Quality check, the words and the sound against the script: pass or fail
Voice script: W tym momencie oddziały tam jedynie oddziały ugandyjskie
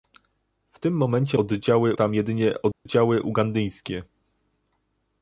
fail